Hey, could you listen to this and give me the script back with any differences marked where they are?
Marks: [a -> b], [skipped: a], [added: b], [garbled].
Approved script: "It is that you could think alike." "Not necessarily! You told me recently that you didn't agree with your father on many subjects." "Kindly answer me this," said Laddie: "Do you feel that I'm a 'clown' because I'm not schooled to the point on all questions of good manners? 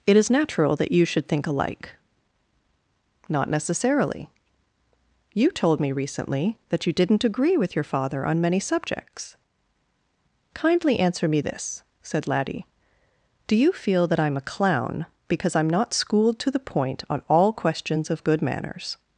"It is [added: natural] that you [could -> should] think alike." "Not necessarily! You told me recently that you didn't agree with your father on many subjects." "Kindly answer me this," said Laddie: "Do you feel that I'm a 'clown' because I'm not schooled to the point on all questions of good manners?